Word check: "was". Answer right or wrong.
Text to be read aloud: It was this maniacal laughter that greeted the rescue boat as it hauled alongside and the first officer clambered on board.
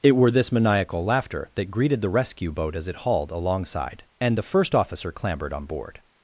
wrong